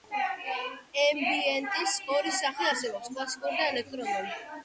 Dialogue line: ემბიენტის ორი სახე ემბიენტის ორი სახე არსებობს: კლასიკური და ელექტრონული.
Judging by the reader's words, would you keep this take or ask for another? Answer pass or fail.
fail